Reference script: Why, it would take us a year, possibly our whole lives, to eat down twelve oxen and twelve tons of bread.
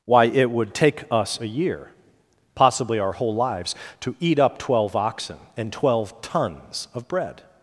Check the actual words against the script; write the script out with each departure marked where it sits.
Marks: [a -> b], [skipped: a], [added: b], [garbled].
Why, it would take us a year, possibly our whole lives, to eat [down -> up] twelve oxen and twelve tons of bread.